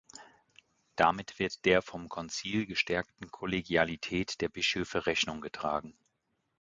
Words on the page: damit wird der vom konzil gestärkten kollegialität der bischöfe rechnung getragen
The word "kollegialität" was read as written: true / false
true